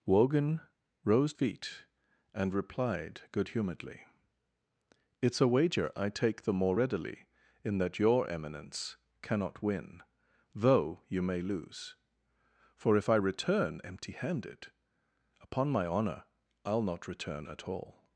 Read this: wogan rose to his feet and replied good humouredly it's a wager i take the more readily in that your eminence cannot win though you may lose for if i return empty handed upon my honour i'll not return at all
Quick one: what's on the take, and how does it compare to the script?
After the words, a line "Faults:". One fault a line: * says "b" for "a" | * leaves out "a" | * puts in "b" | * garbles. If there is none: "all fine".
wogan rose feet and replied good humouredly it's a wager i take the more readily in that your eminence cannot win though you may lose for if i return empty handed upon my honour i'll not return at all
Faults:
* leaves out "to his"